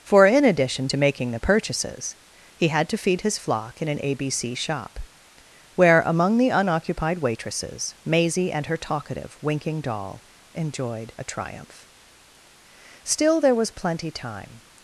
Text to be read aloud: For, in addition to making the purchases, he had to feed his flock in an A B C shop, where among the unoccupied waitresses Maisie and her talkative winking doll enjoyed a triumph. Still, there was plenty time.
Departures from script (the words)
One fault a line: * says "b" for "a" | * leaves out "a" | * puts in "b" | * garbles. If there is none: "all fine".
all fine